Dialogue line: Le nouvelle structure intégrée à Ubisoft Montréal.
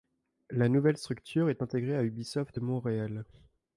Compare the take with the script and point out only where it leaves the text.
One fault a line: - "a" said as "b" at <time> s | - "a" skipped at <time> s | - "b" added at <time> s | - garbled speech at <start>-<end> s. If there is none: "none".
- "Le" said as "La" at 0.5 s
- "est" added at 1.5 s